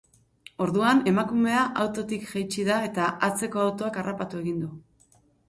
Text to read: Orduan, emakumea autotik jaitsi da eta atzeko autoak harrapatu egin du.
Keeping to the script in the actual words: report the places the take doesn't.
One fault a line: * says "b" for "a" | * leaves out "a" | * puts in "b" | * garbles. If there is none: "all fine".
all fine